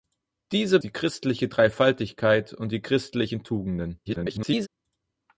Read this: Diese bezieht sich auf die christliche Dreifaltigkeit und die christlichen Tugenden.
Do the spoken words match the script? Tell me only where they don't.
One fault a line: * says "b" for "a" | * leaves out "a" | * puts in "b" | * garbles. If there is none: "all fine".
* leaves out "bezieht sich auf"
* garbles